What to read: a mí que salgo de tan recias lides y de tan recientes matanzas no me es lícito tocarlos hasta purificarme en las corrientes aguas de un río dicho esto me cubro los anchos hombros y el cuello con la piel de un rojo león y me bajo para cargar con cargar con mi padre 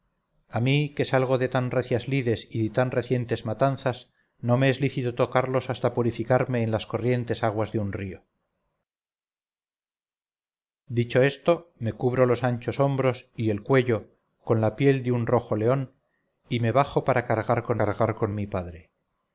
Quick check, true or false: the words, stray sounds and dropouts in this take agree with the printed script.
true